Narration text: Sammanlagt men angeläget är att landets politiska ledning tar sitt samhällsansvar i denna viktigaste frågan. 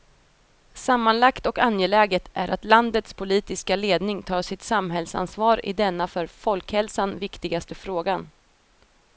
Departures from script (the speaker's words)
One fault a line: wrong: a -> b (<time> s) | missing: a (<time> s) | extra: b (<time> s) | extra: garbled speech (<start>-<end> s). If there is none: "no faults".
wrong: men -> och (1.4 s)
extra: för folkhälsan (6.0 s)